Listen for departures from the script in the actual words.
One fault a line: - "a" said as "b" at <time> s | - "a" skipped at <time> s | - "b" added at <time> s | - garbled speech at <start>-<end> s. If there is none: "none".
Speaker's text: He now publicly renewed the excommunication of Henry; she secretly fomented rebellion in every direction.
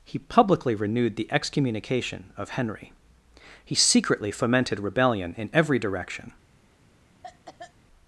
- "now" skipped at 0.2 s
- "she" said as "he" at 3.6 s